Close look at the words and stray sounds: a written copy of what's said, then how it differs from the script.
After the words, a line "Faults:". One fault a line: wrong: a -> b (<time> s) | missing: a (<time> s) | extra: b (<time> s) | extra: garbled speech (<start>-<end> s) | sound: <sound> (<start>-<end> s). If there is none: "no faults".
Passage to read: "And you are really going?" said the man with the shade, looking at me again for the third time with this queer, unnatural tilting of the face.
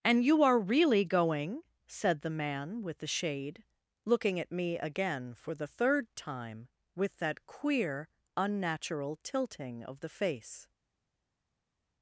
"And you are really going?" said the man with the shade, looking at me again for the third time with that queer, unnatural tilting of the face.
Faults:
wrong: this -> that (7.2 s)